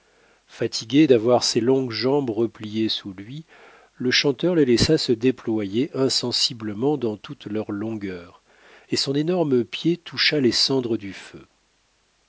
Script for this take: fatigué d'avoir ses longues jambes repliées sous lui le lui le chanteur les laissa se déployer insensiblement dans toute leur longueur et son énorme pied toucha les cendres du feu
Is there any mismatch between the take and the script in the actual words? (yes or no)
yes